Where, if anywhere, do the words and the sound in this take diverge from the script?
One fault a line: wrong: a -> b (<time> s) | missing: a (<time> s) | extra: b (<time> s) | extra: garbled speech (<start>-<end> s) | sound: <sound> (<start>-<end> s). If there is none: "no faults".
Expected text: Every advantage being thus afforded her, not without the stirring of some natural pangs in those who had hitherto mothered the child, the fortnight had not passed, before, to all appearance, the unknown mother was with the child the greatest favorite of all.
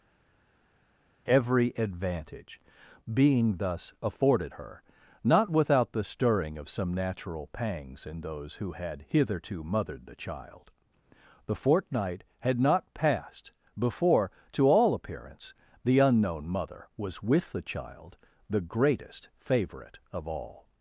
no faults